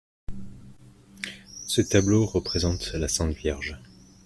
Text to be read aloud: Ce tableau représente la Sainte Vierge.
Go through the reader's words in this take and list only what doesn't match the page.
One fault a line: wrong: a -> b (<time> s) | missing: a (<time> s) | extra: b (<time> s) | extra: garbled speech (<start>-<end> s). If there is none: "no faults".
no faults